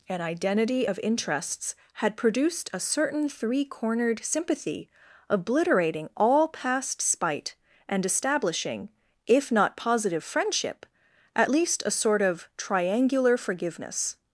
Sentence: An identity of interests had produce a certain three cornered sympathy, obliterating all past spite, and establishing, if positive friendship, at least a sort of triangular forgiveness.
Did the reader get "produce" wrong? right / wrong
wrong